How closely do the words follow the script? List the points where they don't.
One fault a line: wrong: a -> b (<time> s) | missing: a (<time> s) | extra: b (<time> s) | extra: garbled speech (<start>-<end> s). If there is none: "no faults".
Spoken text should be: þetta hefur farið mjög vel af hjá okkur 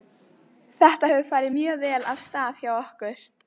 extra: stað (2.3 s)